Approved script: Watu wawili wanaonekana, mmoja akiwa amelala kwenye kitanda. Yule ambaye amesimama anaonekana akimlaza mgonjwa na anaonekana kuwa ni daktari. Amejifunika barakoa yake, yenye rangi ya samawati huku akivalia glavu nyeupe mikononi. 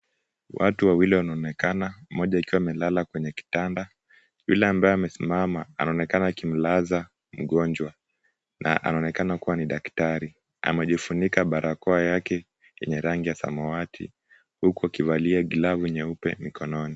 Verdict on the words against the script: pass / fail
pass